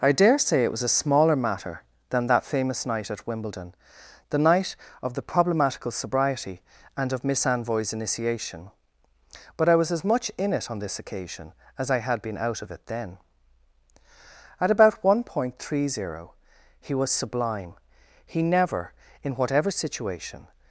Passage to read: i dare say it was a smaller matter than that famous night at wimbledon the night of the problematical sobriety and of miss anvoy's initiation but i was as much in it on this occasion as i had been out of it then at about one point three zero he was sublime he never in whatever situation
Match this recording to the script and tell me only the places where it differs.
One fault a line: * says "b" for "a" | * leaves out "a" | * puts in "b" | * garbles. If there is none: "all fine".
all fine